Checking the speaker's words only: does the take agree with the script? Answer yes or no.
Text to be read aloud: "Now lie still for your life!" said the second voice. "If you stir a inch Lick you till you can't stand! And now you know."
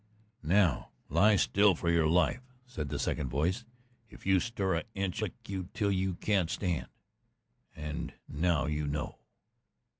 yes